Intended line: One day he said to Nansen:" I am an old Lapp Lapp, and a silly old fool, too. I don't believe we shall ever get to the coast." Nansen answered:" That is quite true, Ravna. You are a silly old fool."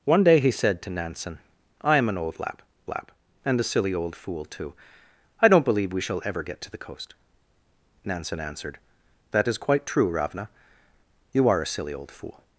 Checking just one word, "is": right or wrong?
right